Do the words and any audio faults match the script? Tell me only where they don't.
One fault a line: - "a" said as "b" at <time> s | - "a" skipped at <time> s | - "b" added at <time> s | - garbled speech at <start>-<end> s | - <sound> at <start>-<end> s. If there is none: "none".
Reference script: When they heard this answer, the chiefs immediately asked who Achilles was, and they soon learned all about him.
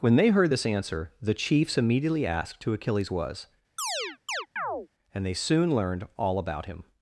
- chirp at 3.8-4.9 s